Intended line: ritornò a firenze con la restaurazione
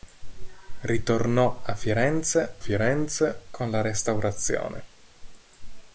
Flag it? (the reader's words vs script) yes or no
yes